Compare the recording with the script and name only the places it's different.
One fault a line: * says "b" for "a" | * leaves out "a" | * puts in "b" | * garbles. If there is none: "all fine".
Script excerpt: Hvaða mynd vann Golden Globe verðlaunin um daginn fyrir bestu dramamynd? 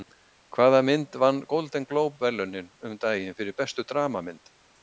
all fine